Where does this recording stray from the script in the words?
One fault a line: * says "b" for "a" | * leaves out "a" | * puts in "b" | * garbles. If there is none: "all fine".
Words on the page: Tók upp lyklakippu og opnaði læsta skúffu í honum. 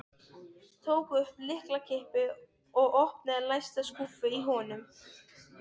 all fine